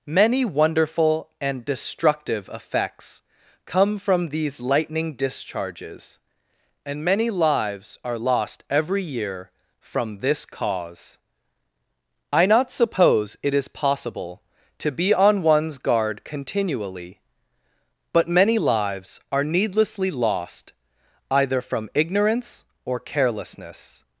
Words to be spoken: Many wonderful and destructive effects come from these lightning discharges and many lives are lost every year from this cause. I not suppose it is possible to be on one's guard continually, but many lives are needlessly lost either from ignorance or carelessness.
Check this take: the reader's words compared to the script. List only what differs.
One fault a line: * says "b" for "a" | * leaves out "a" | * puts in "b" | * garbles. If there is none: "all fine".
all fine